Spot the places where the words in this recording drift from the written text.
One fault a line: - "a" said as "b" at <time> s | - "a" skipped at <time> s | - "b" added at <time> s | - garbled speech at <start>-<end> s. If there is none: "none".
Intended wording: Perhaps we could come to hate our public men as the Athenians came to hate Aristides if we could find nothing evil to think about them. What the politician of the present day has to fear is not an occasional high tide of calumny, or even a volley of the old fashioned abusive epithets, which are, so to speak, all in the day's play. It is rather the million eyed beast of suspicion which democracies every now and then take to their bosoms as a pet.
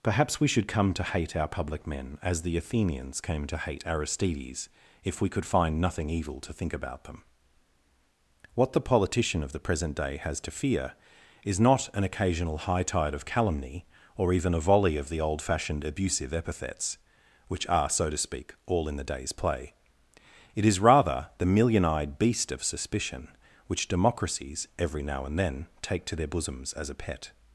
- "could" said as "should" at 0.5 s